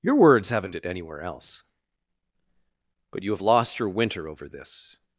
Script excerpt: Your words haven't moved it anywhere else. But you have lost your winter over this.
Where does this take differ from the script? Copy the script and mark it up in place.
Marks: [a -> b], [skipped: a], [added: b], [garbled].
Your words haven't [skipped: moved] it anywhere else. But you have lost your winter over this.